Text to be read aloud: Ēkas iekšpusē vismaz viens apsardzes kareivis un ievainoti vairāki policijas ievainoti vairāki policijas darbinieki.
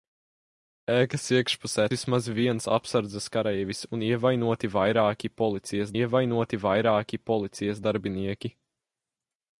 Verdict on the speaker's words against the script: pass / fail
pass